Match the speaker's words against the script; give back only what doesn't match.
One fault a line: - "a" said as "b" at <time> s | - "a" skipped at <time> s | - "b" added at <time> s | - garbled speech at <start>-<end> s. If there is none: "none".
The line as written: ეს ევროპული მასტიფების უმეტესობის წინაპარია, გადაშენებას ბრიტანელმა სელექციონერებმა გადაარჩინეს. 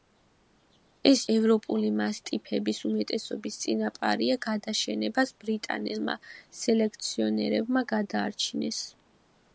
none